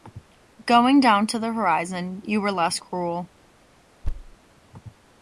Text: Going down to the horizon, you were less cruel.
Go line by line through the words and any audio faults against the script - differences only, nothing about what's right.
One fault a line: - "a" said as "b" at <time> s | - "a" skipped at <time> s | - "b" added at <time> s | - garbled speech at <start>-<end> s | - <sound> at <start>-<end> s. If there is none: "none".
- thud at 4.0-4.4 s